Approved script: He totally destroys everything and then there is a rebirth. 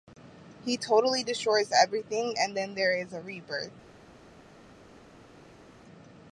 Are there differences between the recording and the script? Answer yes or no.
no